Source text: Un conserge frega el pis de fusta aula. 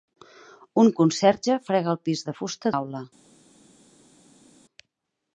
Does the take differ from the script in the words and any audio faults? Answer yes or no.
no